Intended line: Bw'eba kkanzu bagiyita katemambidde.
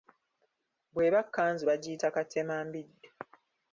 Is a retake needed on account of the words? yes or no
no